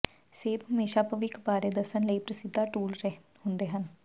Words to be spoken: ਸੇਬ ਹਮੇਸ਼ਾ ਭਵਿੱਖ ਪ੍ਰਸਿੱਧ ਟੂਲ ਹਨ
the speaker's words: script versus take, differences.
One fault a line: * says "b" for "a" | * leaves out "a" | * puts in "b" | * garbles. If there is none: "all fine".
* puts in "ਬਾਰੇ ਦੱਸਣ ਲਈ"
* puts in "ਹੁੰਦੇ"